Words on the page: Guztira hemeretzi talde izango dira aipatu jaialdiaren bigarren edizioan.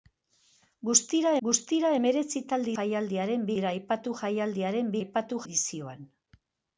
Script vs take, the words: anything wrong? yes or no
yes